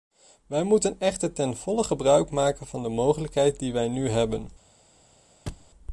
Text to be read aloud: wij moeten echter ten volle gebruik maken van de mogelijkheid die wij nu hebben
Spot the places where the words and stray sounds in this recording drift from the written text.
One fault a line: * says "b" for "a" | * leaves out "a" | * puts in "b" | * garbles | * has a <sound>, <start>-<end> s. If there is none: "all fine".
* has a thud, 5.5-5.7 s